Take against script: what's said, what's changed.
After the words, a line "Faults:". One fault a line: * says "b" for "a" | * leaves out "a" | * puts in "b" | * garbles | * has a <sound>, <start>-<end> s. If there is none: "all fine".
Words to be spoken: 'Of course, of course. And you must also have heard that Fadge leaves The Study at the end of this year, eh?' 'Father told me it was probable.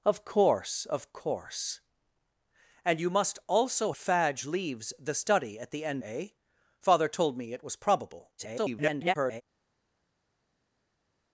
'Of course, of course. And you must also Fadge leaves The Study at the end eh?' 'Father told me it was probable. [garbled]
Faults:
* leaves out "have heard that"
* leaves out "of this year"
* garbles